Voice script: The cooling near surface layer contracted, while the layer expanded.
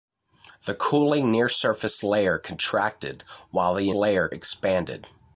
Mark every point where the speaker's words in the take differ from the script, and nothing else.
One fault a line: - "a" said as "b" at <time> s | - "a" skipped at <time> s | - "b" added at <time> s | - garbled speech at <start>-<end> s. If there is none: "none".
none